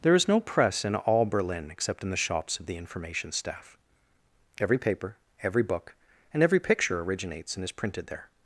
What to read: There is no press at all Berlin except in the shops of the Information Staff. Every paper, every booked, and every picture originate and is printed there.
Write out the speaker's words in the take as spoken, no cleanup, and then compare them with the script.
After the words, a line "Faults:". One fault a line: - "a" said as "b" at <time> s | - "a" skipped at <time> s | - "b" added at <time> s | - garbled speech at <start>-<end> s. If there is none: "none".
There is no press in all Berlin except in the shops of the Information Staff. Every paper, every book, and every picture originates and is printed there.
Faults:
- "at" said as "in" at 0.8 s
- "booked" said as "book" at 5.6 s
- "originate" said as "originates" at 7.0 s